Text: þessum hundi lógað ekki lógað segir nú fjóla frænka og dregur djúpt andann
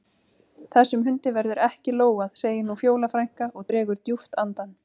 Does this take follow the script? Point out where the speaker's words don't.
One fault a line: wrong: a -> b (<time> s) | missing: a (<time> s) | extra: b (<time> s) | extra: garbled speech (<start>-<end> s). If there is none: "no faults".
wrong: lógað -> verður (1.4 s)